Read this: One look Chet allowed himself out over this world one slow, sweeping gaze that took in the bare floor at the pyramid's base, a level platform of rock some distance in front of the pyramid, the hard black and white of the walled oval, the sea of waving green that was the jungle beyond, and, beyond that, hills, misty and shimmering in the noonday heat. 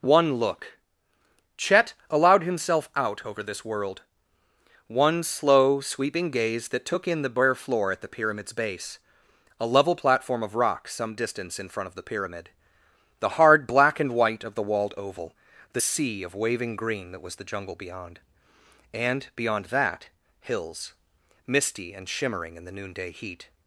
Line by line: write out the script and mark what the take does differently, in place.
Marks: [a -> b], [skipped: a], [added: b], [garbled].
One look Chet allowed himself out over this world one slow, sweeping gaze that took in the bare floor at the pyramid's base, a level platform of rock some distance in front of the pyramid, the hard black and white of the walled oval, the sea of waving green that was the jungle beyond, and, beyond that, hills, misty and shimmering in the noonday heat.